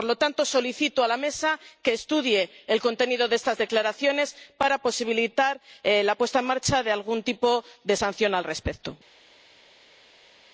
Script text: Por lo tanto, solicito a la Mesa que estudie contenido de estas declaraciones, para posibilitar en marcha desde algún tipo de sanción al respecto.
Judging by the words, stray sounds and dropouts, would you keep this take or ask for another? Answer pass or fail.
fail